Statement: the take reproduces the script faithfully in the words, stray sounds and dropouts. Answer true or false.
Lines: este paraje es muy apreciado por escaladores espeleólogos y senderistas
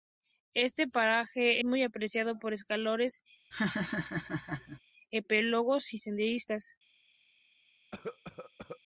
false